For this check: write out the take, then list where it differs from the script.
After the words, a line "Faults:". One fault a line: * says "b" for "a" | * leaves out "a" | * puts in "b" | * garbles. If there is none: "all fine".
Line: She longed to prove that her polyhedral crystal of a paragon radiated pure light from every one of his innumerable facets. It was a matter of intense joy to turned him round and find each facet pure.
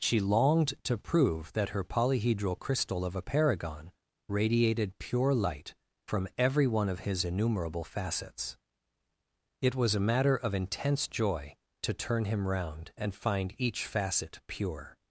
She longed to prove that her polyhedral crystal of a paragon radiated pure light from every one of his innumerable facets. It was a matter of intense joy to turn him round and find each facet pure.
Faults:
* says "turn" for "turned"